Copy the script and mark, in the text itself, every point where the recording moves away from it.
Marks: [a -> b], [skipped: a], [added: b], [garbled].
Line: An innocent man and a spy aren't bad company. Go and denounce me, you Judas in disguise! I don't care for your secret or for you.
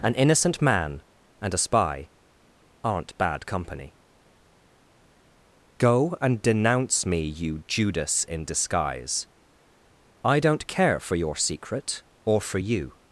An innocent man and a spy aren't bad company. Go and denounce me, you Judas in disguise! I don't care for your secret or for you.